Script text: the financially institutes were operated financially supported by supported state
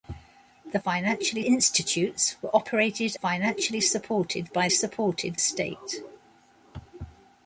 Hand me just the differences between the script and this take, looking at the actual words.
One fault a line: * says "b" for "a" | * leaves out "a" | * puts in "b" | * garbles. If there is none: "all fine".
all fine